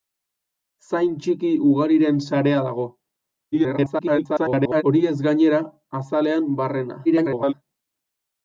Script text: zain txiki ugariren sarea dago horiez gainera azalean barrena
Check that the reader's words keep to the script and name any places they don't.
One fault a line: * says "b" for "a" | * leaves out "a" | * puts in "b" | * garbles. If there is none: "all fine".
* garbles
* garbles